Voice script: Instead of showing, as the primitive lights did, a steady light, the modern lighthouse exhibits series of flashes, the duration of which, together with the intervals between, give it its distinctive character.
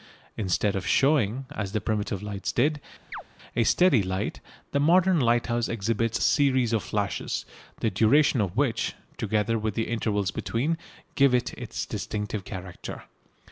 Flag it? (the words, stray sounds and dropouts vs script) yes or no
yes